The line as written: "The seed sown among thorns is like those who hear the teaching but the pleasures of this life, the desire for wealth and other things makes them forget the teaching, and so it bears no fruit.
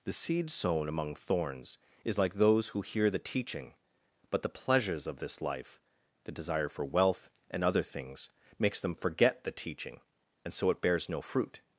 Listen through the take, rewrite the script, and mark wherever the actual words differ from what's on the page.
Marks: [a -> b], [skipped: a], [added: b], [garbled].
"The seed sown among thorns is like those who hear the teaching but the pleasures of this life, the desire for wealth and other things makes them forget the teaching, and so it bears no fruit.